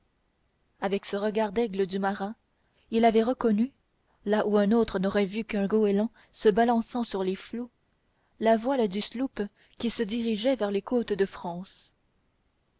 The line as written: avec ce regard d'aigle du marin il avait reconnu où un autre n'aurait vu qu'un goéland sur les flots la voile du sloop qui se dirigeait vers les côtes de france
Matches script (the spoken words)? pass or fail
fail